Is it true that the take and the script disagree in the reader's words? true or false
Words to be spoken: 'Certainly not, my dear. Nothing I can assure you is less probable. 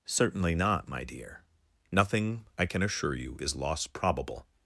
true